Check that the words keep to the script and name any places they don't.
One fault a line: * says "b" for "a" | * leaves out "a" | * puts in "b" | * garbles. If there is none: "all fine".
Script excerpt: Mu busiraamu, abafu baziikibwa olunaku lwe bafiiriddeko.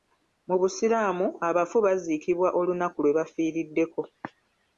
all fine